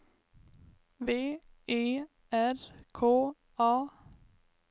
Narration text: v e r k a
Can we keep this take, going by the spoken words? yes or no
yes